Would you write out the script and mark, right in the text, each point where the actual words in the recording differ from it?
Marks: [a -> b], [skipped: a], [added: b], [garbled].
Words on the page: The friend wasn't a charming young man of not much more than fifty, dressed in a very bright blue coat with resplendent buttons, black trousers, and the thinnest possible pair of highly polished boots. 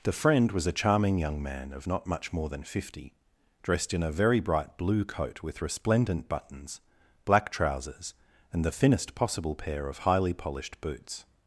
The friend [wasn't -> was] a charming young man of not much more than fifty, dressed in a very bright blue coat with resplendent buttons, black trousers, and the thinnest possible pair of highly polished boots.